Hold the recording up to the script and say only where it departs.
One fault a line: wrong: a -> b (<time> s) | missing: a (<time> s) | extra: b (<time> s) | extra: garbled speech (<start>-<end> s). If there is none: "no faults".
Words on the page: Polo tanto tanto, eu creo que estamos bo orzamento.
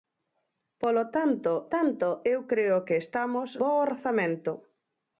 no faults